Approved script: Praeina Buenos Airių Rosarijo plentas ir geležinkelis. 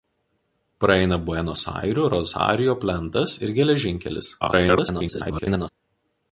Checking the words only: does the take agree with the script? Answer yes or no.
no